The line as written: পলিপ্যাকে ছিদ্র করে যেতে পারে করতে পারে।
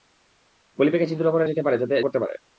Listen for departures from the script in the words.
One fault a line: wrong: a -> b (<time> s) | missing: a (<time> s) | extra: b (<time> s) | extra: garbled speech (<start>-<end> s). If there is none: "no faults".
no faults